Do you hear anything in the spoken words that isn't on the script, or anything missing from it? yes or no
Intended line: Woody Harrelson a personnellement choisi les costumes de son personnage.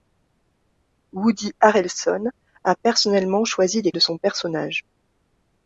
yes